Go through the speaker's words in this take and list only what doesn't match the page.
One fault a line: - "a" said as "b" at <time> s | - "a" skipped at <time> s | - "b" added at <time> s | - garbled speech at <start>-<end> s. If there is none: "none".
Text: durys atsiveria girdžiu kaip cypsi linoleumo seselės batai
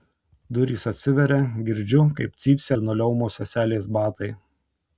none